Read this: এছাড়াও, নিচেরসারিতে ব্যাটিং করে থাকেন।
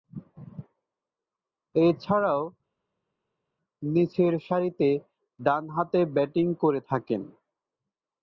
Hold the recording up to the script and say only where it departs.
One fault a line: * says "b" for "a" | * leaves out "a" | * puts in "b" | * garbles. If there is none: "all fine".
* puts in "ডানহাতে"